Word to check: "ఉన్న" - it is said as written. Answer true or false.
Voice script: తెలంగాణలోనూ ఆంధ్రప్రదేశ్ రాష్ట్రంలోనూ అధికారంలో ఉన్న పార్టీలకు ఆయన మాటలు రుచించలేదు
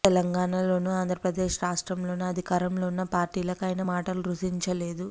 true